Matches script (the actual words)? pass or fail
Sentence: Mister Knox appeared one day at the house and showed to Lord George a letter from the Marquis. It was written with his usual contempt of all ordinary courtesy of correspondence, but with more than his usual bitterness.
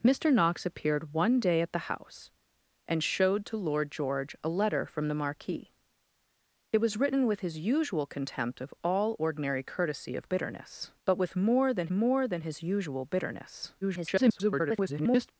fail